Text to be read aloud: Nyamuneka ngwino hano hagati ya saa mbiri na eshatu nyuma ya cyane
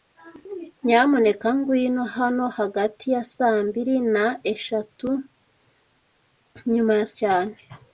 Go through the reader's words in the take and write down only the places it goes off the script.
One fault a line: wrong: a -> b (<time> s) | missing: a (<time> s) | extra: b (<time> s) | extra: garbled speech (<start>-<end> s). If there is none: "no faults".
no faults